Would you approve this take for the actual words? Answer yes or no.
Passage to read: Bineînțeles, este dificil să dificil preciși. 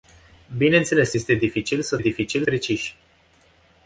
yes